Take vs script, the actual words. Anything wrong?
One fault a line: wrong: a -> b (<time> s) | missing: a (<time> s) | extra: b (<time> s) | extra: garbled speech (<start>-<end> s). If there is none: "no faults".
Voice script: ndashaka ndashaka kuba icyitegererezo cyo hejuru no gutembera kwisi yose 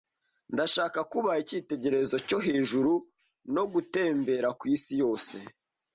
missing: ndashaka (1.0 s)